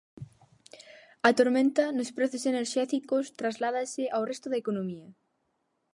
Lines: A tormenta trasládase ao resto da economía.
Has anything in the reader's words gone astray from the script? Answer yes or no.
yes